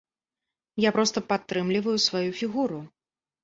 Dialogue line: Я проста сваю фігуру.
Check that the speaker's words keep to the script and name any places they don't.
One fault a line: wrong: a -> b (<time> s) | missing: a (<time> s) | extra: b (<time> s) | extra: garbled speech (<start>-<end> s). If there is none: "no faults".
extra: падтрымліваю (1.3 s)